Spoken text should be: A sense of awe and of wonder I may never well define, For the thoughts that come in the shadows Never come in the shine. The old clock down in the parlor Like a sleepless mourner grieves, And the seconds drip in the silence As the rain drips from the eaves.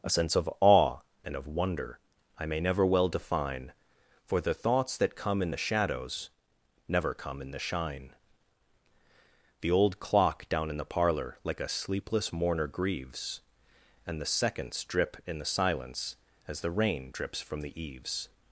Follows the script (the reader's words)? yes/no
yes